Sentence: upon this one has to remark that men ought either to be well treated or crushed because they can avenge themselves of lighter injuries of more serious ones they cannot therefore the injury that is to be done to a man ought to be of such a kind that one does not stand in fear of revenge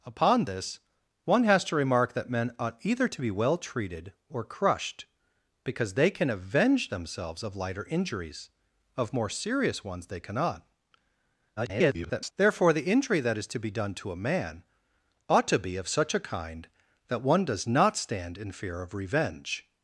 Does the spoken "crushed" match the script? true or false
true